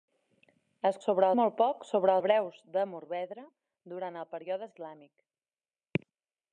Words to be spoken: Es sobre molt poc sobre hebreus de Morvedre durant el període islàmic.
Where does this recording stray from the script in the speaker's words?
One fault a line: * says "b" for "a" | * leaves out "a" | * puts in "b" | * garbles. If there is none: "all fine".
all fine